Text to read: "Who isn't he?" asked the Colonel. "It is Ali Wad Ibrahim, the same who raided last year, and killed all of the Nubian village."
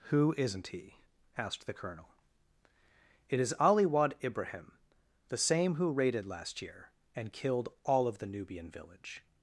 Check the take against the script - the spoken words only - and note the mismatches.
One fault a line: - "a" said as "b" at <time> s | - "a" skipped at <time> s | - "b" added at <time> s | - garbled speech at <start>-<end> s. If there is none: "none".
none